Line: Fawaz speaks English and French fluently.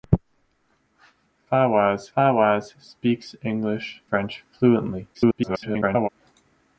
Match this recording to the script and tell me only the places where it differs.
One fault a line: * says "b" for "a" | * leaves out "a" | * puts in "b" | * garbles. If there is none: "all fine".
* puts in "fawaz"
* leaves out "and"
* garbles